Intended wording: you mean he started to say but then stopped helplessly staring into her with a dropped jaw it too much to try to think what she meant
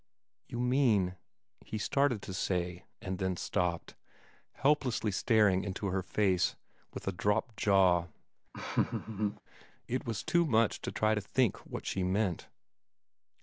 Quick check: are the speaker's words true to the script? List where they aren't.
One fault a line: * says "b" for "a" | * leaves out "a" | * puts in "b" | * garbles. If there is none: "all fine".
* says "and" for "but"
* puts in "face"
* puts in "was"